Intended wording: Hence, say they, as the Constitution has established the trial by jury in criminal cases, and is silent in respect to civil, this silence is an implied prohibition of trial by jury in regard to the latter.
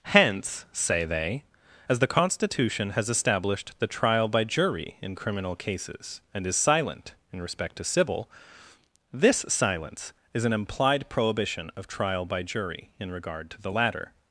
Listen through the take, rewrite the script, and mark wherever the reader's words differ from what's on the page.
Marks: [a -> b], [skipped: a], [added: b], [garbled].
Hence, say they, as the Constitution has established the trial by jury in criminal cases, and is silent in respect to civil, this silence is an implied prohibition of trial by jury in regard to the latter.